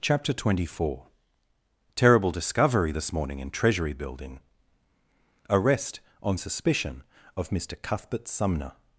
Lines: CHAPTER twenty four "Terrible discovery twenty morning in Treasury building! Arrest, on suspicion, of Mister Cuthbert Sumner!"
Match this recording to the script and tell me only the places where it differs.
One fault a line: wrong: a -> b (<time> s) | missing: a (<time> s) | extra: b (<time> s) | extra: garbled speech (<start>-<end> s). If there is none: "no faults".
wrong: twenty -> this (2.9 s)